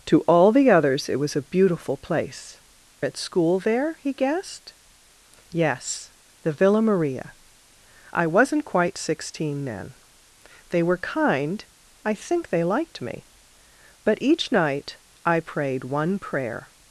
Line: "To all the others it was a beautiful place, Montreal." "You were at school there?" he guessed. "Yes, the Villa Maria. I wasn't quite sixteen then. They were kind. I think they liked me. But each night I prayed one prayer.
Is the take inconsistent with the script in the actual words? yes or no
yes